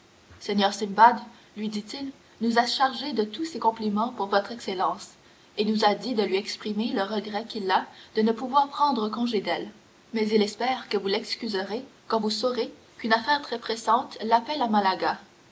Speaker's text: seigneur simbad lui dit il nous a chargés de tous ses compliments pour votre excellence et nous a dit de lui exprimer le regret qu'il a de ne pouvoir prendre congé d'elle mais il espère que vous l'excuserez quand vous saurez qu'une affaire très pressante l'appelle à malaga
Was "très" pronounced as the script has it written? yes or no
yes